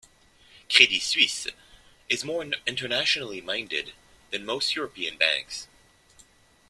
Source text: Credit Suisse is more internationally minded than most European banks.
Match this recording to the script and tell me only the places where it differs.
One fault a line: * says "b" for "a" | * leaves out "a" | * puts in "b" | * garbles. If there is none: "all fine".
all fine